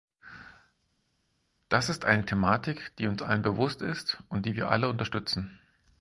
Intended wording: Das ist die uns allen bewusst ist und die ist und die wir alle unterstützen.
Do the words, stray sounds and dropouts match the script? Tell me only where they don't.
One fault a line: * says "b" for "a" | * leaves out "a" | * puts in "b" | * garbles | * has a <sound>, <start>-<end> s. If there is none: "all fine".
* puts in "eine Thematik"
* leaves out "ist und die"